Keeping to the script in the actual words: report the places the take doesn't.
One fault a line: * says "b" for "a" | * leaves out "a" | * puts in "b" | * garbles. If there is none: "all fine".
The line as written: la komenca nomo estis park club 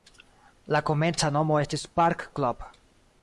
all fine